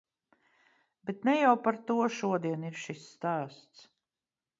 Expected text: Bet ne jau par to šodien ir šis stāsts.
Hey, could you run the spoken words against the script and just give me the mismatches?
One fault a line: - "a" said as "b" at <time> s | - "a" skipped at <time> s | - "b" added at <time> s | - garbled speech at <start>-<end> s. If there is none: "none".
none